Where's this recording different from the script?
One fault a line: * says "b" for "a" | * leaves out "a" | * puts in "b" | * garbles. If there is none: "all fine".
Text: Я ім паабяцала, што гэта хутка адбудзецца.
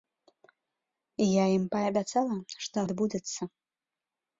* leaves out "гэта хутка"